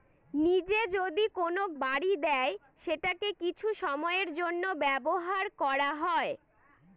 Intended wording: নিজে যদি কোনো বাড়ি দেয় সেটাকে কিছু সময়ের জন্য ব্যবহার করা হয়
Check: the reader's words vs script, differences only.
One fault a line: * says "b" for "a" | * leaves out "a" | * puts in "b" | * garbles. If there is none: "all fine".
all fine